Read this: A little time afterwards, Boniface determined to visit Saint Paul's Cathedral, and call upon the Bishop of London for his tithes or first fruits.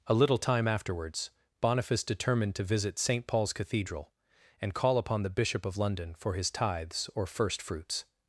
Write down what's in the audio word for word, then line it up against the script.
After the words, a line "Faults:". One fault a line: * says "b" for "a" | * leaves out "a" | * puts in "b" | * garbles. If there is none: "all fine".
A little time afterwards, Boniface determined to visit Saint Paul's Cathedral, and call upon the Bishop of London for his tithes or first fruits.
Faults:
all fine